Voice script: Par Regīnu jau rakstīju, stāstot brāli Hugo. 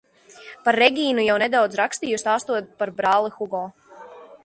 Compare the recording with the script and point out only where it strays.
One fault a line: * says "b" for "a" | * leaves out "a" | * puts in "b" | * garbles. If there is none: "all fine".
* puts in "nedaudz"
* puts in "par"